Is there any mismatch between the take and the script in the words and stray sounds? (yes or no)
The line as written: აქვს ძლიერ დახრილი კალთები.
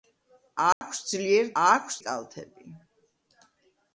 yes